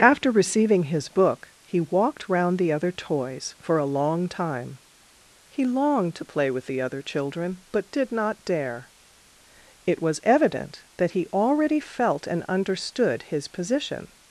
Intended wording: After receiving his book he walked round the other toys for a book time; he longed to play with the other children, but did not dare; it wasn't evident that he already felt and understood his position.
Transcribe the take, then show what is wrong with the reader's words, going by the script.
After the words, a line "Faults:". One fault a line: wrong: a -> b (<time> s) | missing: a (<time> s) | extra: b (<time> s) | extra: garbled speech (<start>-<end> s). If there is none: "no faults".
After receiving his book he walked round the other toys for a long time; he longed to play with the other children, but did not dare; it was evident that he already felt and understood his position.
Faults:
wrong: book -> long (3.9 s)
wrong: wasn't -> was (10.0 s)